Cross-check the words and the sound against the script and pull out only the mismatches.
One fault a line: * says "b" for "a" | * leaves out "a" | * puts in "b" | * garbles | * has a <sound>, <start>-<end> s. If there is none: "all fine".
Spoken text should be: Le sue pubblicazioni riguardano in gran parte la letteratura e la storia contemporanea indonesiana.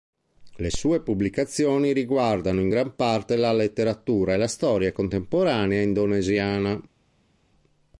all fine